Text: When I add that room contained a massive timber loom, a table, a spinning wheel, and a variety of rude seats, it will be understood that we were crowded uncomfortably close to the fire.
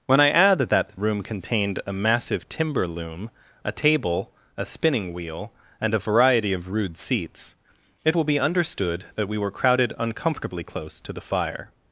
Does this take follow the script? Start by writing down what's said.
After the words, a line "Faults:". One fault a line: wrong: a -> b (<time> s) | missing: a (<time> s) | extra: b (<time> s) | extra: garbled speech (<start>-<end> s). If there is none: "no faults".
When I add that room contained a massive timber loom, a table, a spinning wheel, and a variety of rude seats, it will be understood that we were crowded uncomfortably close to the fire.
Faults:
no faults